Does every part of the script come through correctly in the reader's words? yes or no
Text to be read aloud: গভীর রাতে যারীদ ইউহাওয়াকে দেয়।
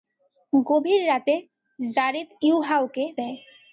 yes